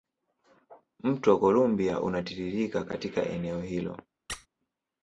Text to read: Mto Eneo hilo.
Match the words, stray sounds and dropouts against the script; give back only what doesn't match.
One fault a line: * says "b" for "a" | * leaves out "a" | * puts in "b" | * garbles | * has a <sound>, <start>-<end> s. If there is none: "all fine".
* puts in "Columbia unatiririka katika"
* has a squeak, 4.3-4.5 s